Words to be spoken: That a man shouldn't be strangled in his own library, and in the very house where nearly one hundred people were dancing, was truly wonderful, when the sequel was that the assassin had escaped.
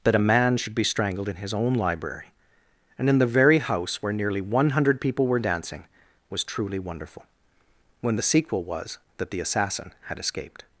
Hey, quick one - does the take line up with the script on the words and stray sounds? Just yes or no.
no